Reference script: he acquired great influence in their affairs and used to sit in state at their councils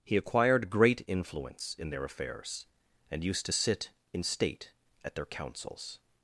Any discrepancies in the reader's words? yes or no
no